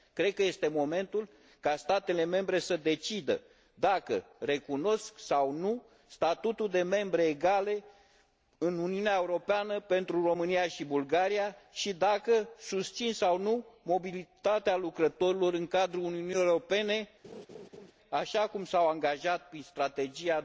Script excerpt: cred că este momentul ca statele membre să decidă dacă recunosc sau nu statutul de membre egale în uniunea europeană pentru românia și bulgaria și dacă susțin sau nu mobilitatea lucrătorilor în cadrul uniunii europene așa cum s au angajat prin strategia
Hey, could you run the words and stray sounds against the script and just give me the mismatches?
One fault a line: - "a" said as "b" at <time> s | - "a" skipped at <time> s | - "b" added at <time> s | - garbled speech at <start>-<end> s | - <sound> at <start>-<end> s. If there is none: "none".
- laugh at 17.2-17.9 s